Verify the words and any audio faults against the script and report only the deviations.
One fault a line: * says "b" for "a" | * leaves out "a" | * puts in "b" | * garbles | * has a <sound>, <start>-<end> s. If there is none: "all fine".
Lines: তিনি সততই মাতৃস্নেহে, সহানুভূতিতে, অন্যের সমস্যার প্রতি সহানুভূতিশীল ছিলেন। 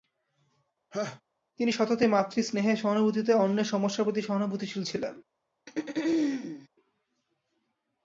* has a laugh, 0.9-1.2 s
* has a throat clearing, 5.7-6.7 s